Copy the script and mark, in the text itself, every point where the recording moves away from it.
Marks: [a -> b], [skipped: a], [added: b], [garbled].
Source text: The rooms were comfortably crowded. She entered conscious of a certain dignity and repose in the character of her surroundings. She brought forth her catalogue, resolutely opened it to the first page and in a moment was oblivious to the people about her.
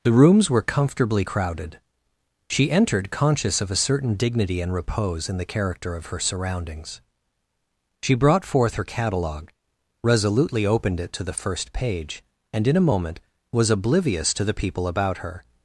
The rooms were comfortably crowded. She entered conscious of a certain dignity and repose in the character of her surroundings. She brought forth her catalogue, resolutely opened it to the first page and in a moment was oblivious to the people about her.